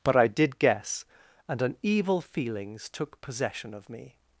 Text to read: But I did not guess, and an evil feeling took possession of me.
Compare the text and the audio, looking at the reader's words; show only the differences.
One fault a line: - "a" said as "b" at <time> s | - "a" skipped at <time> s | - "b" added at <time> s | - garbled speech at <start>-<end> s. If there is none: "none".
- "not" skipped at 0.6 s
- "feeling" said as "feelings" at 2.2 s